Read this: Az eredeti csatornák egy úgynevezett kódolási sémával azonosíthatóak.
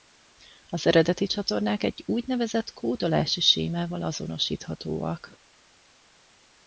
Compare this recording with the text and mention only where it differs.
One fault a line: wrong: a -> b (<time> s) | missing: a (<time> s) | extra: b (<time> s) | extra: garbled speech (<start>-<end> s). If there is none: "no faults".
no faults